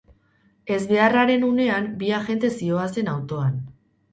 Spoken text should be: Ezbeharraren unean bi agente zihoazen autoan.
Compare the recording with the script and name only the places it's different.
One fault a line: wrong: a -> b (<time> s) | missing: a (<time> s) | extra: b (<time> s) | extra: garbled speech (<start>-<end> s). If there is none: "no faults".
no faults